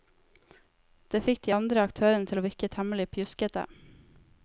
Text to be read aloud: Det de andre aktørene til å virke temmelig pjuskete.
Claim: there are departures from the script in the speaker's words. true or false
true